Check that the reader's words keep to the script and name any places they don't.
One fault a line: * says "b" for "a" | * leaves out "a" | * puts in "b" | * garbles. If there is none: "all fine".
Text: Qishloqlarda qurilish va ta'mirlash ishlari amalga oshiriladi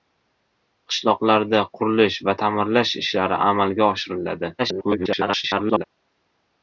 * garbles